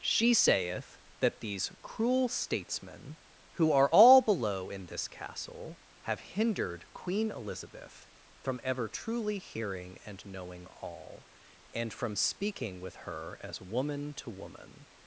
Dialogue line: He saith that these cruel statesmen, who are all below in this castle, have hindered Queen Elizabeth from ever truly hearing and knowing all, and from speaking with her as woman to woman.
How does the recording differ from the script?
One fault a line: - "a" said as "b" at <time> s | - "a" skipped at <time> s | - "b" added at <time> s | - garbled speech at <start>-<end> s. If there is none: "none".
- "He" said as "She" at 0.0 s